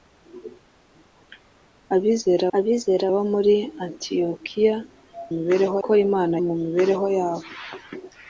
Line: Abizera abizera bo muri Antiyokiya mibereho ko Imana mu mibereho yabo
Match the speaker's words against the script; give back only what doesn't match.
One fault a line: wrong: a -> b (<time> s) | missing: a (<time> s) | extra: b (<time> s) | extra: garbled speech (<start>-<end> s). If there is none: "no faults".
no faults